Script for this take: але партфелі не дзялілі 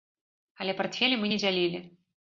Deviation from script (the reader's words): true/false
true